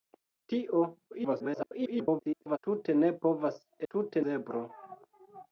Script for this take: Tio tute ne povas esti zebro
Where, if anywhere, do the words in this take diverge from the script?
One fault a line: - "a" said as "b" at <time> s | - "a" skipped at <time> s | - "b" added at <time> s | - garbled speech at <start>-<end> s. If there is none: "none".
- garbled speech at 1.1-2.6 s
- "esti" said as "tute" at 3.9 s